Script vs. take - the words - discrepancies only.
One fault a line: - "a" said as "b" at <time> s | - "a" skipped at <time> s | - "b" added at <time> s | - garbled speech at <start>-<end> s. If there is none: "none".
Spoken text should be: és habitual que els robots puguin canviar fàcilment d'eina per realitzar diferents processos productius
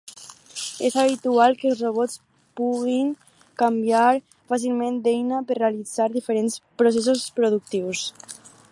none